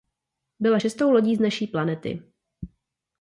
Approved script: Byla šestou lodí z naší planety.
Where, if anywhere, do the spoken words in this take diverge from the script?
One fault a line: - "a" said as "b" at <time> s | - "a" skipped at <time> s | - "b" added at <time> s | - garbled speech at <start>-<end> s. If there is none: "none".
none